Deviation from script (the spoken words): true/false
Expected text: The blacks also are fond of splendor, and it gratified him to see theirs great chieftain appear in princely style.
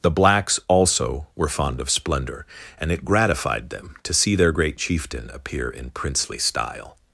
true